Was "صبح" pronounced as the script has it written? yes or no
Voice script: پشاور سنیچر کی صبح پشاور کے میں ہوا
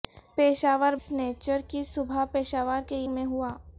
yes